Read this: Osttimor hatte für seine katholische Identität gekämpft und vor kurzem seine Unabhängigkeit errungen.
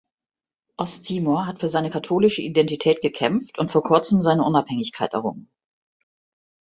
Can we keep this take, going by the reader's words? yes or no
no